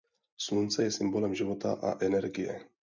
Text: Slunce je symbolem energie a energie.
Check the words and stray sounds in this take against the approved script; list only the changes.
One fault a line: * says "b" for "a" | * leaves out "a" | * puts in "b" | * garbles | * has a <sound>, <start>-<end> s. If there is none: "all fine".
* says "života" for "energie"